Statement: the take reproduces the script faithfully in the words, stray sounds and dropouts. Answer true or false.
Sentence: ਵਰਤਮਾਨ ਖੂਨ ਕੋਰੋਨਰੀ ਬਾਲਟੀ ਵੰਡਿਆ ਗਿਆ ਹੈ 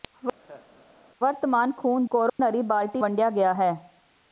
false